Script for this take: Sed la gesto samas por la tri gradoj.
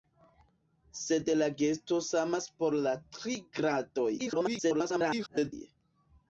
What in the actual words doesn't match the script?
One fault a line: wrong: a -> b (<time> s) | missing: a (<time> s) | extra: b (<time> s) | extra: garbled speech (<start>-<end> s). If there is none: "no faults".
extra: garbled speech (4.2-5.5 s)